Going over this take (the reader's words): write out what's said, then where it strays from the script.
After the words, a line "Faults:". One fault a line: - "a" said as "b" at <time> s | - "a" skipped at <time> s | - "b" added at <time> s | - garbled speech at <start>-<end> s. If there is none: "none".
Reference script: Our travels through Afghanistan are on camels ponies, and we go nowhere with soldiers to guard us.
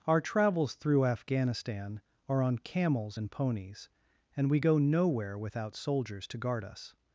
Our travels through Afghanistan are on camels and ponies, and we go nowhere without soldiers to guard us.
Faults:
- "and" added at 3.2 s
- "with" said as "without" at 5.4 s